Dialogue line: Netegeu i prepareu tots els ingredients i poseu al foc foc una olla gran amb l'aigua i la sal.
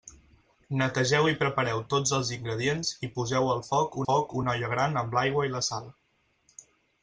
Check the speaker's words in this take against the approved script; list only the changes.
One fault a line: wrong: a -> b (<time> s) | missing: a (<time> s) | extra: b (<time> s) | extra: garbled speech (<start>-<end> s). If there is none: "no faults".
no faults